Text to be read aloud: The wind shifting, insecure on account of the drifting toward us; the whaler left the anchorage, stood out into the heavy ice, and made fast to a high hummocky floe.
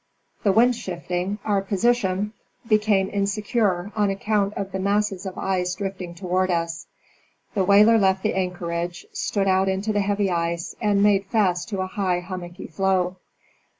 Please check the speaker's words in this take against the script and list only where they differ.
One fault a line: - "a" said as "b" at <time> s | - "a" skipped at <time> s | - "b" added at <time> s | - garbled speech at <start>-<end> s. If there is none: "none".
- "our position became" added at 1.4 s
- "masses of ice" added at 4.8 s